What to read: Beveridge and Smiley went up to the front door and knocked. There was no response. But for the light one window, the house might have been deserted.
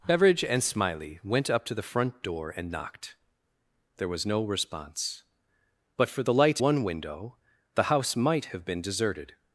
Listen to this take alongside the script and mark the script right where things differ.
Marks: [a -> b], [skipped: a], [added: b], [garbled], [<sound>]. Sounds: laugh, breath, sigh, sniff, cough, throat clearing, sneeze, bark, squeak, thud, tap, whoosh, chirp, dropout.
Beveridge and Smiley went up to the front door and knocked. There was no response. But for the light one window, the house might have been deserted.